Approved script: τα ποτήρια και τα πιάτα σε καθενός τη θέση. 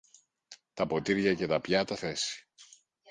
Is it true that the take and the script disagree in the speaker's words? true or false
true